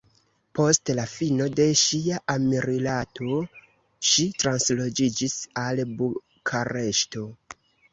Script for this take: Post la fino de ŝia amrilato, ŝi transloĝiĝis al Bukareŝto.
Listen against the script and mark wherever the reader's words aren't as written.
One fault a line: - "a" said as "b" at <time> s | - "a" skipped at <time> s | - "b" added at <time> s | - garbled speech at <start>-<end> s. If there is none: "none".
none